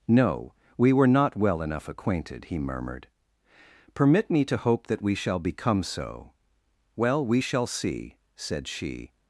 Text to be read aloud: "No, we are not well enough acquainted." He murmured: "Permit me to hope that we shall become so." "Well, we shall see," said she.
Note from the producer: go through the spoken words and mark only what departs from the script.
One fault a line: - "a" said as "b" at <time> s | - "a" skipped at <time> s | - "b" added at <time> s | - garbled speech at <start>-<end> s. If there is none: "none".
- "are" said as "were" at 0.9 s